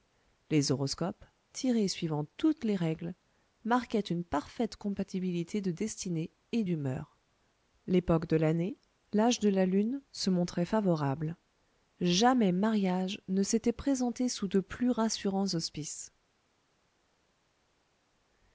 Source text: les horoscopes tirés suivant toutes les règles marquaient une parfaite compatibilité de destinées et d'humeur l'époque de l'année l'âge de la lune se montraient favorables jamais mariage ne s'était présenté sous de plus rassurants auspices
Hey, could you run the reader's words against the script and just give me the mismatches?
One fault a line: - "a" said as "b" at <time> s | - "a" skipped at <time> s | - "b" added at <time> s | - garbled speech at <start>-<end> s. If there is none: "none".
none